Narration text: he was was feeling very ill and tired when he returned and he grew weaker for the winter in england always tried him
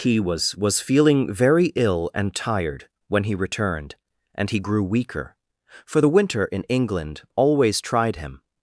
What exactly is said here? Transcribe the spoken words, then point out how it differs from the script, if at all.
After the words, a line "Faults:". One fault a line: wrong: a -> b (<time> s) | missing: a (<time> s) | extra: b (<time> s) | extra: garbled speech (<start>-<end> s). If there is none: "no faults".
he was was feeling very ill and tired when he returned and he grew weaker for the winter in england always tried him
Faults:
no faults